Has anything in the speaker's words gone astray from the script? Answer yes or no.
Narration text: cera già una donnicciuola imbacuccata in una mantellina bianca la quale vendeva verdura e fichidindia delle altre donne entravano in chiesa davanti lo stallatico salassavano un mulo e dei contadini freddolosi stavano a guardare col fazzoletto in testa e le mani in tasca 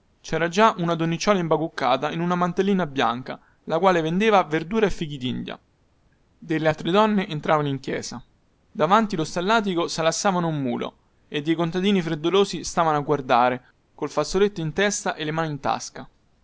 no